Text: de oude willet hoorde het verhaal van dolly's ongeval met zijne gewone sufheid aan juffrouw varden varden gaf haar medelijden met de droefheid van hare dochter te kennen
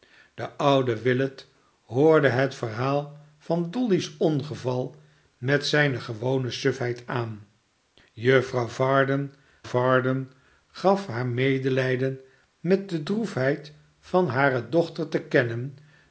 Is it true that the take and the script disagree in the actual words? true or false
false